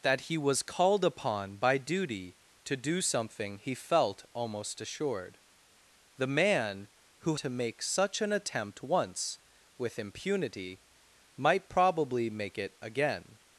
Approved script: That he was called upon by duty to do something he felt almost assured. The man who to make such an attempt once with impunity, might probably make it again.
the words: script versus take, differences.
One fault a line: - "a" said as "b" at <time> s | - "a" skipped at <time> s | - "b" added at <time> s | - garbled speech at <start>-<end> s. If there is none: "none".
none